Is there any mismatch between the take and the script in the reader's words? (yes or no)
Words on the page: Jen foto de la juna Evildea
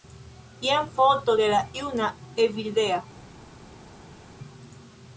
no